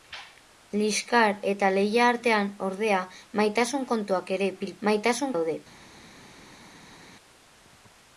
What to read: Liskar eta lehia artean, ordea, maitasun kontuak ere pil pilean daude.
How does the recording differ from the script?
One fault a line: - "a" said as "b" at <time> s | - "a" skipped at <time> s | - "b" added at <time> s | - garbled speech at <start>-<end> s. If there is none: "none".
- "pilean" said as "maitasun" at 4.9 s